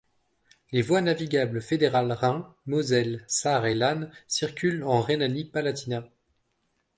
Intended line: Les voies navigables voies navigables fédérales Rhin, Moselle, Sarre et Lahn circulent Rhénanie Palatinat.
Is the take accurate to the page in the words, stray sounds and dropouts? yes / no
no